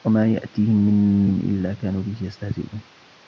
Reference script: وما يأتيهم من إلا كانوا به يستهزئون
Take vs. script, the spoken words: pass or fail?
pass